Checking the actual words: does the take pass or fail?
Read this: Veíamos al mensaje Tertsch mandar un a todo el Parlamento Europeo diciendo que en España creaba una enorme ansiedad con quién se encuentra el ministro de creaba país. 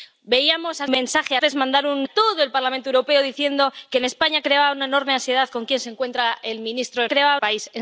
pass